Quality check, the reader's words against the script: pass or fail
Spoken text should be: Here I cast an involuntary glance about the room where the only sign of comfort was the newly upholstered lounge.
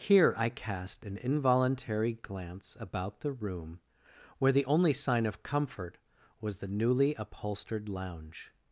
pass